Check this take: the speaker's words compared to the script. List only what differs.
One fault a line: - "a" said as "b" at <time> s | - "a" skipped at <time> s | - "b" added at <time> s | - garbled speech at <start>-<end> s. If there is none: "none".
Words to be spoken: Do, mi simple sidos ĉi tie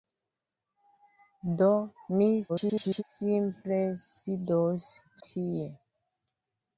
- garbled speech at 2.5-3.0 s
- "ĉi" skipped at 4.9 s